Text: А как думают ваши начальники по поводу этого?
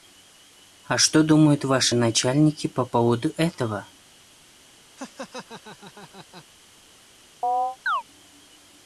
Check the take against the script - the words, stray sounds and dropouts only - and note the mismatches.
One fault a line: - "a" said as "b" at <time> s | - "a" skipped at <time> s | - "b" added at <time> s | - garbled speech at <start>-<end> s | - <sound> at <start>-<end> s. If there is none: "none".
- "как" said as "что" at 1.0 s
- laugh at 5.0-6.5 s
- chirp at 7.4-8.0 s